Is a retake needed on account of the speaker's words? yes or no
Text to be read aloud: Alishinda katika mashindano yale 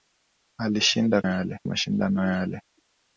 yes